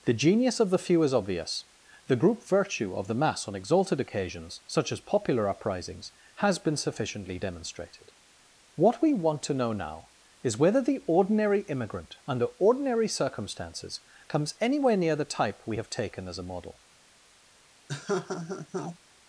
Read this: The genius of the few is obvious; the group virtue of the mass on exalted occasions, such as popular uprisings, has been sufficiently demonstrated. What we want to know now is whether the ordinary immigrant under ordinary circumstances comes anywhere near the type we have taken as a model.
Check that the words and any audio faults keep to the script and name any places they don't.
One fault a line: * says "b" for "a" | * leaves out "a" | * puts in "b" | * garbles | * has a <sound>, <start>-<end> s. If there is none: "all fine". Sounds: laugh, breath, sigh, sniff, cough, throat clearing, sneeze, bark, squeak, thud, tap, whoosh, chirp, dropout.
* has a laugh, 17.9-19.0 s